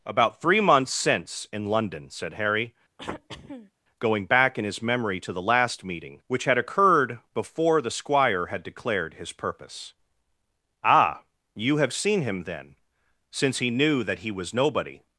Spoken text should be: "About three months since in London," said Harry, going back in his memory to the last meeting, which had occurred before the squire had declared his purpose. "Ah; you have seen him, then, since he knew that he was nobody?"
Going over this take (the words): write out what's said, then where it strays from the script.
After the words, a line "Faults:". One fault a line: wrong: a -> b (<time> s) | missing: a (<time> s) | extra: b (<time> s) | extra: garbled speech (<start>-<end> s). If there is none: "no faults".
"About three months since in London," said Harry, going back in his memory to the last meeting, which had occurred before the squire had declared his purpose. "Ah; you have seen him, then, since he knew that he was nobody?"
Faults:
no faults